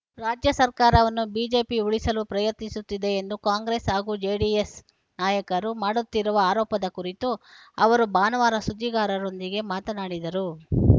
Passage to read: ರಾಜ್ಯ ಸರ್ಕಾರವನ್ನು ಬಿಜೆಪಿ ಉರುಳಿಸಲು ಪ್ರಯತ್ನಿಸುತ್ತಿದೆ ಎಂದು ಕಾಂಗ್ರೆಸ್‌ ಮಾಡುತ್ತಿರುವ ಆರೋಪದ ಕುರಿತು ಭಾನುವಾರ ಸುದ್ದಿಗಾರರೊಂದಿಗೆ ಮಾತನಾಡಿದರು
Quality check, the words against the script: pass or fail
fail